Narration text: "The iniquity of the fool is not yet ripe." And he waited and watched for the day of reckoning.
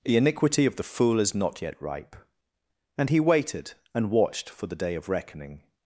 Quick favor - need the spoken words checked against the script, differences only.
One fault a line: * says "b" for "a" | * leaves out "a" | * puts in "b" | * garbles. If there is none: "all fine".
all fine